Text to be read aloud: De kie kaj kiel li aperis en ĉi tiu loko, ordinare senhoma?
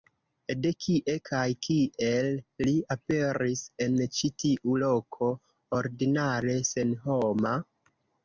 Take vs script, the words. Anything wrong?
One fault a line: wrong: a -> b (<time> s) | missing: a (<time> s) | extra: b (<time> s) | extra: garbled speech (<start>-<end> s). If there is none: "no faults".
no faults